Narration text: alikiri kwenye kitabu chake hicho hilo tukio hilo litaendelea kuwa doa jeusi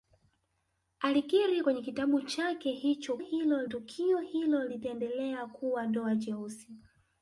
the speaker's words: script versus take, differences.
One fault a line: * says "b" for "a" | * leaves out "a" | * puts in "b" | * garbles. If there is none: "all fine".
all fine